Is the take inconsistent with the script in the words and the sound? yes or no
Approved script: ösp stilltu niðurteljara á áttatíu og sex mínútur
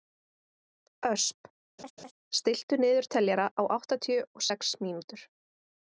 yes